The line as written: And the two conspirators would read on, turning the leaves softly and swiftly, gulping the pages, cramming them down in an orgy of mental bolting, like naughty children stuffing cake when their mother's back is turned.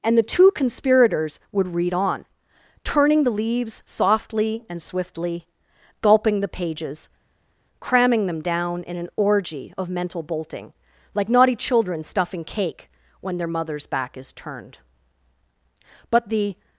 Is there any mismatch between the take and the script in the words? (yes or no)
yes